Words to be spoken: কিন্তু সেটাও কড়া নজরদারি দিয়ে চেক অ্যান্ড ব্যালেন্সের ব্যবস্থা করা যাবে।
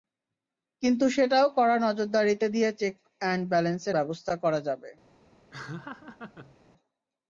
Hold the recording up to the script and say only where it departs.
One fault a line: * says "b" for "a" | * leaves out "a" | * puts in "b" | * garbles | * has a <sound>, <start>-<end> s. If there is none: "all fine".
* has a laugh, 5.5-6.6 s